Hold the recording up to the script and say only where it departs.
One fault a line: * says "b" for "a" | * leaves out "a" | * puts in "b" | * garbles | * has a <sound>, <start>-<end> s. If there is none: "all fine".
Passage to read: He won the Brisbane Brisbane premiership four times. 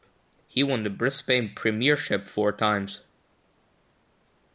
* leaves out "Brisbane"